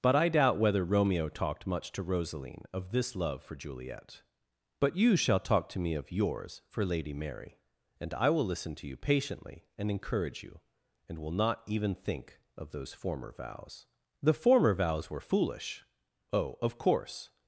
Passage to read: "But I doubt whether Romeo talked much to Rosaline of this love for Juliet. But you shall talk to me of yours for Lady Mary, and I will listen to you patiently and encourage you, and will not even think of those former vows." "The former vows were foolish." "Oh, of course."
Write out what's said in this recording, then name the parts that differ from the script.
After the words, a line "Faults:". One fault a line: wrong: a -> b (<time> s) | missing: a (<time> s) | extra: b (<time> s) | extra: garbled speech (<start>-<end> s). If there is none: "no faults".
"But I doubt whether Romeo talked much to Rosaline of this love for Juliet. But you shall talk to me of yours for Lady Mary, and I will listen to you patiently and encourage you, and will not even think of those former vows." "The former vows were foolish." "Oh, of course."
Faults:
no faults